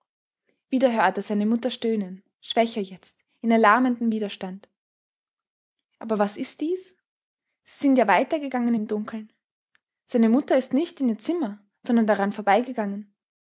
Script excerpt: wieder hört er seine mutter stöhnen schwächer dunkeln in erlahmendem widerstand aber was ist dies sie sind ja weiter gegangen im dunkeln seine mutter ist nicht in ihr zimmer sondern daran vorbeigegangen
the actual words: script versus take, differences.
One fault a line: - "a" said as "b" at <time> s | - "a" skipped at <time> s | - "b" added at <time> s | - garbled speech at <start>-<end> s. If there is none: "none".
- "dunkeln" said as "jetzt" at 2.8 s